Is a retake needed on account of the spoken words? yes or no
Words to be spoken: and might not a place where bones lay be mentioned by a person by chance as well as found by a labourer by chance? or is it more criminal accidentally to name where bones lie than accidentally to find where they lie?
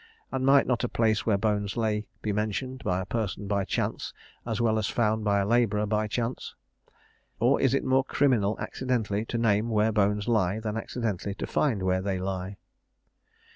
no